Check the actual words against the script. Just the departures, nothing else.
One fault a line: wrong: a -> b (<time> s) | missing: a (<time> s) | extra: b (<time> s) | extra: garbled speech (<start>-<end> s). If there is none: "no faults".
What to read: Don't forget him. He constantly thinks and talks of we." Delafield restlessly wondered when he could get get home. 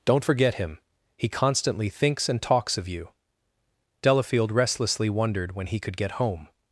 wrong: we -> you (2.9 s)
missing: get (6.1 s)